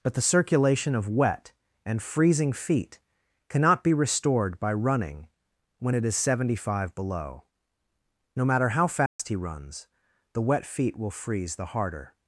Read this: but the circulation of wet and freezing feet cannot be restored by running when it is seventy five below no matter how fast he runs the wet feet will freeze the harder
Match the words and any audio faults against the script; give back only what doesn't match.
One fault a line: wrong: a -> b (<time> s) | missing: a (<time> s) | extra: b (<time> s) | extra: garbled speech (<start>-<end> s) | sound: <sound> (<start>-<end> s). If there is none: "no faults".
sound: dropout (9.1-9.2 s)